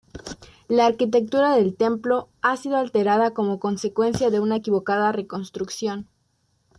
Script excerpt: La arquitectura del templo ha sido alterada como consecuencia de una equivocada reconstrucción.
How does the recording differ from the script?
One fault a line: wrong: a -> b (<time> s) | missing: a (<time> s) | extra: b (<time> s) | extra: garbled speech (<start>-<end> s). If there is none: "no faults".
no faults